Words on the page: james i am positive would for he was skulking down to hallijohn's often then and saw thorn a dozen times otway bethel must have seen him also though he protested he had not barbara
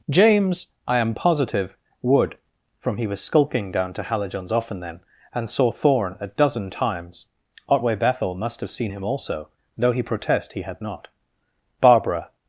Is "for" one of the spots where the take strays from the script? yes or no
yes